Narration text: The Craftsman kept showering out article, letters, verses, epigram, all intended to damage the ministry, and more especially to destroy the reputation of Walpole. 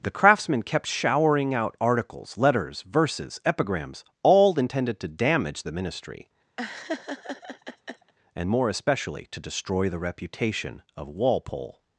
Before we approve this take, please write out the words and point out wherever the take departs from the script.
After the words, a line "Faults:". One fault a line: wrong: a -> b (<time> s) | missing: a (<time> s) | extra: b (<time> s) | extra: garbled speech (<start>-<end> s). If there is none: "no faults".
The Craftsman kept showering out articles, letters, verses, epigrams, all intended to damage the ministry, and more especially to destroy the reputation of Walpole.
Faults:
wrong: article -> articles (1.8 s)
wrong: epigram -> epigrams (3.5 s)